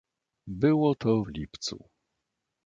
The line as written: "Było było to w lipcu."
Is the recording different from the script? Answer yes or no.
yes